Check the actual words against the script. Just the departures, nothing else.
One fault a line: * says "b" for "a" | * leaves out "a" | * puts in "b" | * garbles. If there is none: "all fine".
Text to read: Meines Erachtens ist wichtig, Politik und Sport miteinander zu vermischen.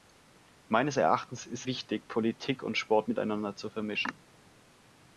all fine